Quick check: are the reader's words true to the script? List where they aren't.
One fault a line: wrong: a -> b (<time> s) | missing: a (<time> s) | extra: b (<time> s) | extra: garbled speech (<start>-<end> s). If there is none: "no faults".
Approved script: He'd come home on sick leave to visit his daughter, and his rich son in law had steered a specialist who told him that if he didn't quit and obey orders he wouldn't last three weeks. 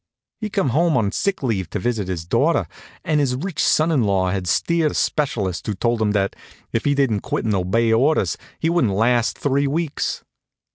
no faults